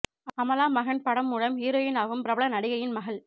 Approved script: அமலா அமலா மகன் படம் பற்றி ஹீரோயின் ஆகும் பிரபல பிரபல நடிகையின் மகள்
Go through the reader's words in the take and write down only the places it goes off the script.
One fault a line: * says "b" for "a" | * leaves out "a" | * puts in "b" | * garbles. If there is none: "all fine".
* leaves out "அமலா"
* says "மூலம்" for "பற்றி"
* leaves out "பிரபல"